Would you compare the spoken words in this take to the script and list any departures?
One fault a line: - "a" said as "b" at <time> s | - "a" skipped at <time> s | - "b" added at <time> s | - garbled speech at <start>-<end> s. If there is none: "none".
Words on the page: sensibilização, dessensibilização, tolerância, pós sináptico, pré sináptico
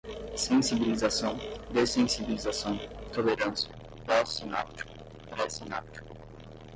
none